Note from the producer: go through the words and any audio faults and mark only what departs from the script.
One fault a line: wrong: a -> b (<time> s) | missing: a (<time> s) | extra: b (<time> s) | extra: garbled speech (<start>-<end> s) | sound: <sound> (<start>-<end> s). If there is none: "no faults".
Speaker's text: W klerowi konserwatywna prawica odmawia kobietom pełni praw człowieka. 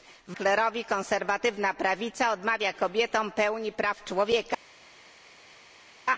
no faults